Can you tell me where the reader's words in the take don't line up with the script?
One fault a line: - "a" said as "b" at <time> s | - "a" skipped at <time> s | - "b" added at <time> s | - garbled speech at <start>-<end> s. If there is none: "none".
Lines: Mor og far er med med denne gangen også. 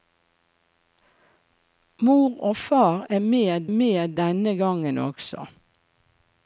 none